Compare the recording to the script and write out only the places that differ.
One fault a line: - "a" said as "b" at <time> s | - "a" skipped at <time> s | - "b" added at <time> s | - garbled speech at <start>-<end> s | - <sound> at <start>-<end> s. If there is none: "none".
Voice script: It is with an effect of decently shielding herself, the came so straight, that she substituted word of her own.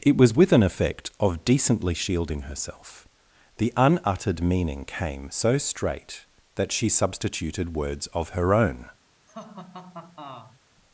- "is" said as "was" at 0.2 s
- "unuttered meaning" added at 3.8 s
- "word" said as "words" at 7.7 s
- laugh at 9.3-10.6 s